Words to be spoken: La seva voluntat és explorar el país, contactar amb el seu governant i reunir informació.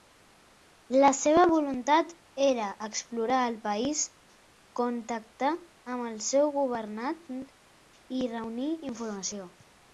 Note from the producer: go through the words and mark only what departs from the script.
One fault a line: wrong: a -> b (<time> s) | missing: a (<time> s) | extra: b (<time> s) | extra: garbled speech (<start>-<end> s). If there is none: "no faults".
wrong: és -> era (2.5 s)